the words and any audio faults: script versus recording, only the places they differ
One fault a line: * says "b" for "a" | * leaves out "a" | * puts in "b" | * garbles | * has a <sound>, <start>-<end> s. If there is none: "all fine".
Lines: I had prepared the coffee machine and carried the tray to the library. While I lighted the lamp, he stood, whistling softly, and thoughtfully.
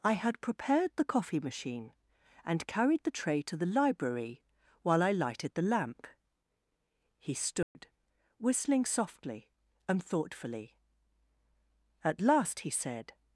* has a dropout, 7.6-7.8 s
* puts in "At last he said"